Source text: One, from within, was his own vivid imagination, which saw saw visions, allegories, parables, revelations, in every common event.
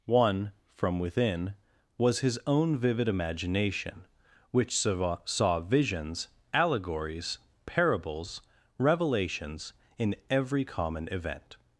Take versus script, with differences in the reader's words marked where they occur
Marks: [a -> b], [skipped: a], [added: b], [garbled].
One, from within, was his own vivid imagination, which saw saw visions, allegories, parables, revelations, in every common event.